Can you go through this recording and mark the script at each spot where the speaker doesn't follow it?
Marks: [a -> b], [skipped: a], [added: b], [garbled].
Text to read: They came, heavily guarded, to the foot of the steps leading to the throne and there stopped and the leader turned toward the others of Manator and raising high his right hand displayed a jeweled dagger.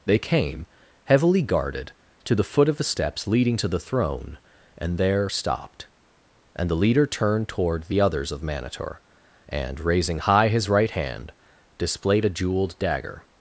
They came, heavily guarded, to the foot of the steps leading to the throne and there stopped and the leader turned toward the others of Manator and raising high his right hand displayed a jeweled dagger.